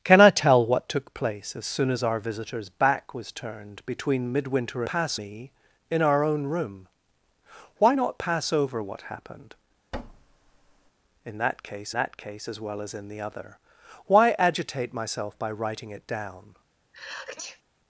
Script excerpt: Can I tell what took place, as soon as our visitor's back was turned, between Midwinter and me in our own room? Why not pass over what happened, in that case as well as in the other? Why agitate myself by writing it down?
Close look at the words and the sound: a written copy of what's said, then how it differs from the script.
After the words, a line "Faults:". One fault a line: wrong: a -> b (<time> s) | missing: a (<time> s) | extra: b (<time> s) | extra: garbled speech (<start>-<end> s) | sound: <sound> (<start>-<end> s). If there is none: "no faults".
Can I tell what took place, as soon as our visitor's back was turned, between Midwinter pass me in our own room? Why not pass over what happened, in that case that case as well as in the other? Why agitate myself by writing it down?
Faults:
wrong: and -> pass (4.8 s)
sound: thud (9.9-10.9 s)
extra: that case (11.9 s)
sound: sneeze (16.9-17.6 s)